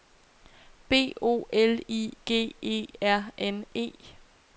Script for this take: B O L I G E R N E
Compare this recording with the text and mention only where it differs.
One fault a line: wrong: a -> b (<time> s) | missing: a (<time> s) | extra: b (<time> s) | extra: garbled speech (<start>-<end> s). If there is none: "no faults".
no faults